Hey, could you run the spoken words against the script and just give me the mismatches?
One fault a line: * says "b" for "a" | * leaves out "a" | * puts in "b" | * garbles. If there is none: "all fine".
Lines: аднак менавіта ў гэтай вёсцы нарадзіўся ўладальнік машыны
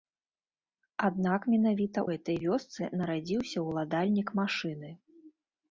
* leaves out "ў"